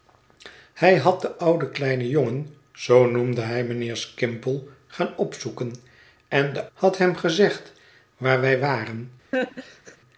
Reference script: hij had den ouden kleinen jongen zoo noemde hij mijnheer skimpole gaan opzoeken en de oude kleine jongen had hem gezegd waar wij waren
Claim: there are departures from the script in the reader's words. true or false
true